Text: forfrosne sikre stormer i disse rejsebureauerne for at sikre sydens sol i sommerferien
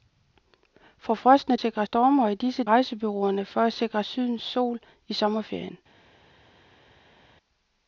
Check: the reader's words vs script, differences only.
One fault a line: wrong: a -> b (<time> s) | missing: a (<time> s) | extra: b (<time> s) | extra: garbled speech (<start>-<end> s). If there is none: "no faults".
no faults